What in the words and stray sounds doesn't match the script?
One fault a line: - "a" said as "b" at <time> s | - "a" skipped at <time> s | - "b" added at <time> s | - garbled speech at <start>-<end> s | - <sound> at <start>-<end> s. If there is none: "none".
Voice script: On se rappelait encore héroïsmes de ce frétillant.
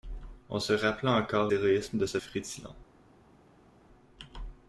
none